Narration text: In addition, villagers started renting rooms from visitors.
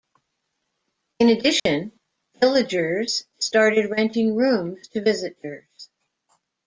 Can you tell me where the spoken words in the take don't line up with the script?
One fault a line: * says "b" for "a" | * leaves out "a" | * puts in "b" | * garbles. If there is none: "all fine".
* says "to" for "from"